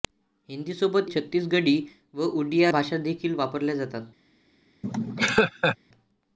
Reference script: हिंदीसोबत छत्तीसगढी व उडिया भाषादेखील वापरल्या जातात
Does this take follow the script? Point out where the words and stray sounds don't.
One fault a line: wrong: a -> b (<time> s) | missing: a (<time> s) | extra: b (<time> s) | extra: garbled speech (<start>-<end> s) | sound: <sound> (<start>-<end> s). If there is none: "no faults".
sound: laugh (4.8-5.8 s)